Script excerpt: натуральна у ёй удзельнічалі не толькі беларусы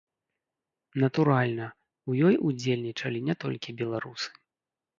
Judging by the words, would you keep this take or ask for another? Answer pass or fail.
pass